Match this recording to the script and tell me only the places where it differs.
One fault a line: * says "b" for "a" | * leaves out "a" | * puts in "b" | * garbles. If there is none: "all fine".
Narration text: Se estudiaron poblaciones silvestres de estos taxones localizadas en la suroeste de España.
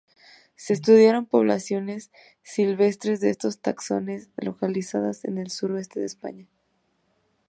* says "el" for "la"